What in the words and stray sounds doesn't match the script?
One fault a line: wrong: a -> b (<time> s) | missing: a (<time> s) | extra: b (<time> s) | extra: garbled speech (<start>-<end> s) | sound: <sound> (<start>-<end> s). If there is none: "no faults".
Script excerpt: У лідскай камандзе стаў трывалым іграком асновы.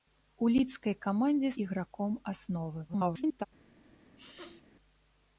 missing: стаў трывалым (1.5 s)
extra: garbled speech (2.9-3.5 s)
sound: sneeze (4.2-4.6 s)